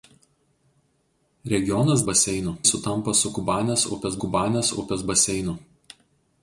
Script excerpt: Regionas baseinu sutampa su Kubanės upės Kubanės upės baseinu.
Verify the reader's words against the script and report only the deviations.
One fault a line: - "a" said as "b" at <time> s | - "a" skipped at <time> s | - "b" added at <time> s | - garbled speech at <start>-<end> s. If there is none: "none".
none